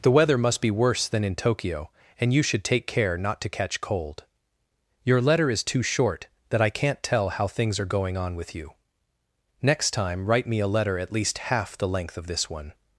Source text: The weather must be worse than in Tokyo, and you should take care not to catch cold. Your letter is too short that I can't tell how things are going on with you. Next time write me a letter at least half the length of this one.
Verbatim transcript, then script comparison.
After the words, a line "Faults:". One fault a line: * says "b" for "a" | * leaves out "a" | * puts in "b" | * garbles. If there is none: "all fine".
The weather must be worse than in Tokyo, and you should take care not to catch cold. Your letter is too short that I can't tell how things are going on with you. Next time write me a letter at least half the length of this one.
Faults:
all fine